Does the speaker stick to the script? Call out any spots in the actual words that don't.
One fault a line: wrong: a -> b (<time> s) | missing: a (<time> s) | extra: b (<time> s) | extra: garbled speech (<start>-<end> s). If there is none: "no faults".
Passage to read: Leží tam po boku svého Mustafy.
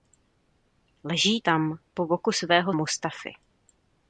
no faults